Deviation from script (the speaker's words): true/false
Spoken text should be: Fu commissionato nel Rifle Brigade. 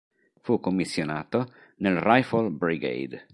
false